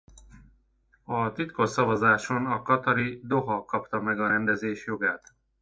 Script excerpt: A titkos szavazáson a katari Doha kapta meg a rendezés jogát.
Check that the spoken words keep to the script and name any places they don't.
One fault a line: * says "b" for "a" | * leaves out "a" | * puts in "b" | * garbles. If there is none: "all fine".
all fine